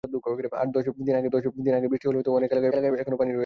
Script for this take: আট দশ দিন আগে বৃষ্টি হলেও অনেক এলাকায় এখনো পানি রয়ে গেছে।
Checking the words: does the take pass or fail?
fail